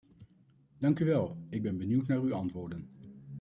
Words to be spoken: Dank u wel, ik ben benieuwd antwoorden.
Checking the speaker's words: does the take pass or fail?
fail